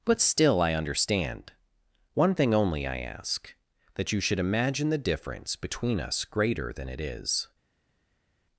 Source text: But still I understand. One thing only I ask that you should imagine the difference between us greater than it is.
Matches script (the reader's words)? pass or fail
pass